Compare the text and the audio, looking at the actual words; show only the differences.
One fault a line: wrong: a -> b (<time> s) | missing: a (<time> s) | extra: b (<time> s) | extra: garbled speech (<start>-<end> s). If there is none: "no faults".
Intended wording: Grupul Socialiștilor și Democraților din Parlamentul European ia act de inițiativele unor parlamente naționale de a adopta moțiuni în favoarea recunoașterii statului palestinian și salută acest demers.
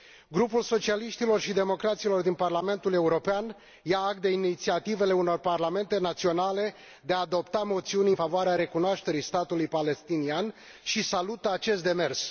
no faults